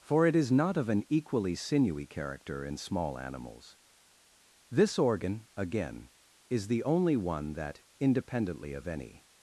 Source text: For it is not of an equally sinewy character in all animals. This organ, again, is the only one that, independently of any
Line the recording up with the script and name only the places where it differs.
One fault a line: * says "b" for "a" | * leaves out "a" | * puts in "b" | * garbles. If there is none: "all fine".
* says "small" for "all"